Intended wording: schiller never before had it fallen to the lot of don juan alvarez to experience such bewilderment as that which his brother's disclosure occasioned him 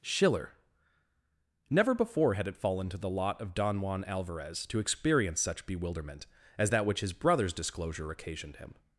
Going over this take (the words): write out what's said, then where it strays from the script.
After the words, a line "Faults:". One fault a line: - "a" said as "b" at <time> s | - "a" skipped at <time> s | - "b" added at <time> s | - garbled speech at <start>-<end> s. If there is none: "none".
schiller never before had it fallen to the lot of don juan alvarez to experience such bewilderment as that which his brother's disclosure occasioned him
Faults:
none